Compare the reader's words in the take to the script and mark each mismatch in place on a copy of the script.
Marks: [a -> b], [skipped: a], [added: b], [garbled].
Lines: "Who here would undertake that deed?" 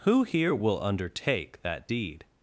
"Who here [would -> will] undertake that deed?"